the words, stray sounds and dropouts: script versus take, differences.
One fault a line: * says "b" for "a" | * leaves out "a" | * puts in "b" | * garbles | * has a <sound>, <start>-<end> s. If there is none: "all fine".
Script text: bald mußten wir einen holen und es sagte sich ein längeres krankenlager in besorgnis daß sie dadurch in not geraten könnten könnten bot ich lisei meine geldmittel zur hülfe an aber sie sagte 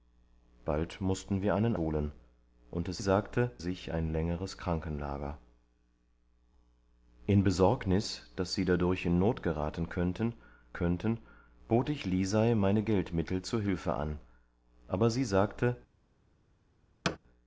* has a thud, 17.0-17.2 s